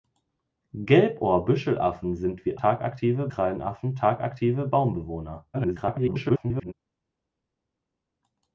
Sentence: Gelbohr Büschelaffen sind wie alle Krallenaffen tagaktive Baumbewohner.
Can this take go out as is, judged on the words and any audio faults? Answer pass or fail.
fail